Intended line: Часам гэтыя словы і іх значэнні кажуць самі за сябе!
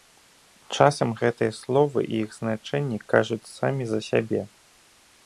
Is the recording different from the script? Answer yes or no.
no